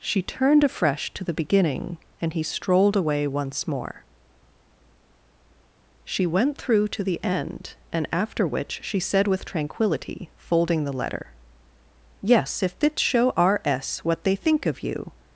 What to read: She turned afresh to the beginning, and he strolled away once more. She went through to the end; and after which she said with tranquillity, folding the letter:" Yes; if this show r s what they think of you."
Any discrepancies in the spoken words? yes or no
no